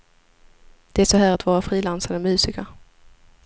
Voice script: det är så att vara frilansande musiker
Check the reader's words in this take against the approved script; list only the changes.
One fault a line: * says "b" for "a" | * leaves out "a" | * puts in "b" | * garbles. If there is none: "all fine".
* puts in "här"